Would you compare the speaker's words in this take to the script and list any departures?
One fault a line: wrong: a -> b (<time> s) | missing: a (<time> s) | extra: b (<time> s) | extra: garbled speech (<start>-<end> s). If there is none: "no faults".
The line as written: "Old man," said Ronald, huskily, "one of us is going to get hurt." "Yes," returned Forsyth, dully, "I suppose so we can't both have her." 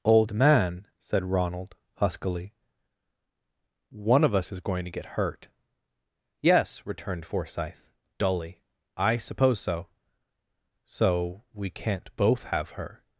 extra: so (10.8 s)